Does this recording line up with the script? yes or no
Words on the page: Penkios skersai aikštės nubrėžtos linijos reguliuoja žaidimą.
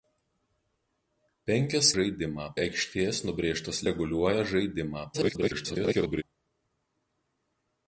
no